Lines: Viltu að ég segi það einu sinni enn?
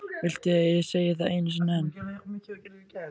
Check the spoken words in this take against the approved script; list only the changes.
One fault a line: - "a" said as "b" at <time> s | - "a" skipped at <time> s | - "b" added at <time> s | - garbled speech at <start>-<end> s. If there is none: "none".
none